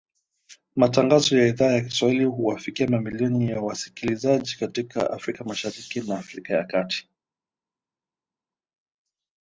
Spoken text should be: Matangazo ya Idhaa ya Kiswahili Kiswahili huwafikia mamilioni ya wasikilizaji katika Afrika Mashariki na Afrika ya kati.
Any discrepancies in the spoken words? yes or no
yes